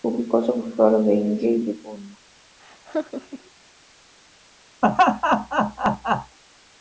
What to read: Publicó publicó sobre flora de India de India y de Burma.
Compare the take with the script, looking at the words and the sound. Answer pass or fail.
fail